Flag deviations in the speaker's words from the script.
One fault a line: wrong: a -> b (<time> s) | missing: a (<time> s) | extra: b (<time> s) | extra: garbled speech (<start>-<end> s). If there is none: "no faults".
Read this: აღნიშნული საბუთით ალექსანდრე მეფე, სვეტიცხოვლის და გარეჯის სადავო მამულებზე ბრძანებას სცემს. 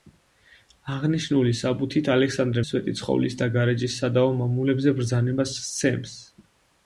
missing: მეფე (2.6 s)